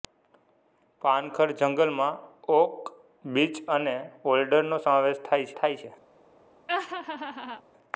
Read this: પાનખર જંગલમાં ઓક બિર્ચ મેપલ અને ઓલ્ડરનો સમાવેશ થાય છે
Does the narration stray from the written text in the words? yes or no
yes